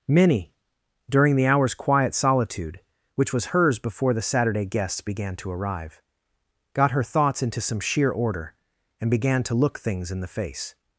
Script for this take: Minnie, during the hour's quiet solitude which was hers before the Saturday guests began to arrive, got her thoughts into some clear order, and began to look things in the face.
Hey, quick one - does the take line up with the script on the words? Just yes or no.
no